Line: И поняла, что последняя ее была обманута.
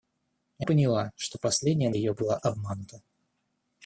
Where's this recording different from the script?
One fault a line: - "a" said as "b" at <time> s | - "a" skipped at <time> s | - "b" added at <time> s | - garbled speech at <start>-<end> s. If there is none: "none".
none